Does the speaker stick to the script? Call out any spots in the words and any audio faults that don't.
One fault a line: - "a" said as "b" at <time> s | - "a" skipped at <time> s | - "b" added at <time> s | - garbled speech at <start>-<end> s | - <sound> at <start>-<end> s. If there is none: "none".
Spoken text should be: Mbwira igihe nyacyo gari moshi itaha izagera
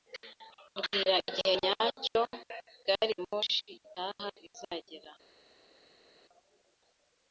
none